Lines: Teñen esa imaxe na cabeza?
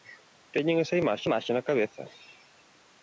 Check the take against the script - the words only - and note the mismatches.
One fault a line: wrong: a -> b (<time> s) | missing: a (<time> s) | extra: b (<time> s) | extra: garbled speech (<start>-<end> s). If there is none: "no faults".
extra: imaxe (1.3 s)